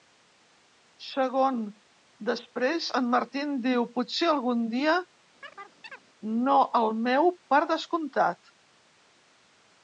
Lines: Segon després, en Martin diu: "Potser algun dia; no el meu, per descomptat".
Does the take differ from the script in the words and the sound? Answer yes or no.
yes